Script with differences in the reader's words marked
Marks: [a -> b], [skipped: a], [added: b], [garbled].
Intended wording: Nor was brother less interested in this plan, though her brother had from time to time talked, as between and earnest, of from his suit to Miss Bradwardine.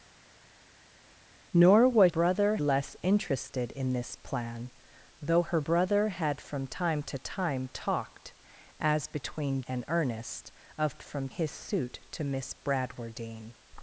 Nor was brother less interested in this plan, though her brother had from time to time talked, as between and earnest, of from his suit to Miss Bradwardine.